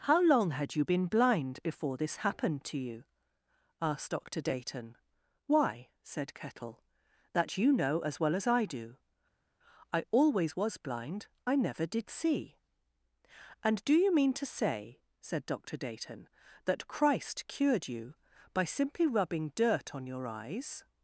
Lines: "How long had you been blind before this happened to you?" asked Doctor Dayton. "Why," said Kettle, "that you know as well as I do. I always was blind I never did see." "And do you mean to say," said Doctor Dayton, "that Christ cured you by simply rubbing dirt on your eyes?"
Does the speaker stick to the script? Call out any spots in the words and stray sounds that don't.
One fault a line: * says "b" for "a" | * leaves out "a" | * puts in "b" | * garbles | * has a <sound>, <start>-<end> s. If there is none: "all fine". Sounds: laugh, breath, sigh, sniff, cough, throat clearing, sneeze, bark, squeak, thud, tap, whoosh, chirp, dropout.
all fine